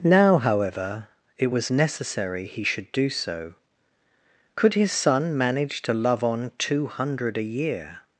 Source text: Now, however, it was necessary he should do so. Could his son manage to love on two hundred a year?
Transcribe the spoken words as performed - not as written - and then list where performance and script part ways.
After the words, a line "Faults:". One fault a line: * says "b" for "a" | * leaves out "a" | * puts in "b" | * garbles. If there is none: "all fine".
Now, however, it was necessary he should do so. Could his son manage to love on two hundred a year?
Faults:
all fine